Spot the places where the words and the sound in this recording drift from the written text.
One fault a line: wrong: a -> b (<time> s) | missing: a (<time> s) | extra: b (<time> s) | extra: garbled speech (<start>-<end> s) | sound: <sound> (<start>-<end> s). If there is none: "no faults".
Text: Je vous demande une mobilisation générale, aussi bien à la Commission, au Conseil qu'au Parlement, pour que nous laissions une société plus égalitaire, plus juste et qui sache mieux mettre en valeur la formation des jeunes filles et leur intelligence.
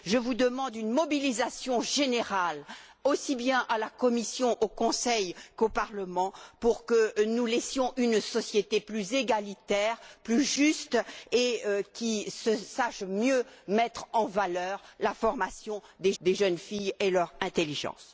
extra: des (16.2 s)